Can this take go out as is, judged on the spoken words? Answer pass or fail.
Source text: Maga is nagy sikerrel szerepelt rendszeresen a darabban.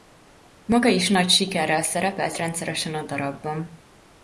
pass